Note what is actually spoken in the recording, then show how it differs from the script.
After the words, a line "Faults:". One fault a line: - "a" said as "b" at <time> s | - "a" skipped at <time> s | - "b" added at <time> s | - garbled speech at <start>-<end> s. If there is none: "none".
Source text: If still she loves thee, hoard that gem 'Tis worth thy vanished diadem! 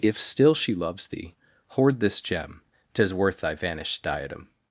If still she loves thee, hoard this gem 'Tis worth thy vanished diadem!
Faults:
- "that" said as "this" at 2.0 s